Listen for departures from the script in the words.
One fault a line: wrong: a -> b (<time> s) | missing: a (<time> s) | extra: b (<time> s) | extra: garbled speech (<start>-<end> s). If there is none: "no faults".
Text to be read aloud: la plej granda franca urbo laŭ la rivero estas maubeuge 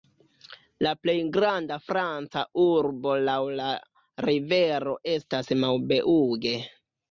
no faults